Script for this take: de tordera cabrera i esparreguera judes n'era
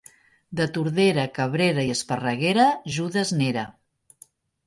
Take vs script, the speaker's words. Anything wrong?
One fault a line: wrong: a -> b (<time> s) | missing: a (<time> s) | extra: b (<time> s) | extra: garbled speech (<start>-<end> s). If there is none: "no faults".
no faults